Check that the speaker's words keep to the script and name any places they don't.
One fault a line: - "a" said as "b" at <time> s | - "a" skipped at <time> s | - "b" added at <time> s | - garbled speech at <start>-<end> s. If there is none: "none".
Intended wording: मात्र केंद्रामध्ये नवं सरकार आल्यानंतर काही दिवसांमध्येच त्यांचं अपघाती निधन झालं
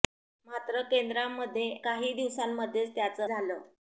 - "नवं सरकार आल्यानंतर" skipped at 1.7 s
- "अपघाती निधन" skipped at 3.3 s